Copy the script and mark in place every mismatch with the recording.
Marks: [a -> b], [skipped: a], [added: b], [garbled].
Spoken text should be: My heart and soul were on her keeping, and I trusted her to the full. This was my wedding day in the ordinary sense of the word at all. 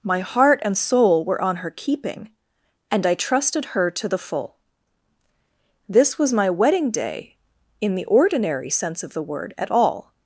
My heart and soul were on her keeping, and I trusted her to the full. This was my wedding day in the ordinary sense of the word at all.